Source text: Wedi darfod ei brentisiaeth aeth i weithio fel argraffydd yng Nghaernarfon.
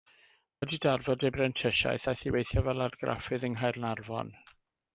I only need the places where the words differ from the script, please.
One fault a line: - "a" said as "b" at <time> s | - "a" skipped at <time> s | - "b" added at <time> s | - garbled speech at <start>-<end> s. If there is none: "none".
none